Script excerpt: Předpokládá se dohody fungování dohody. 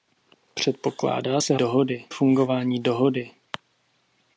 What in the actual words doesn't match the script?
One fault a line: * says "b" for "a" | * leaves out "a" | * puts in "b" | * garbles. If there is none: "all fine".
all fine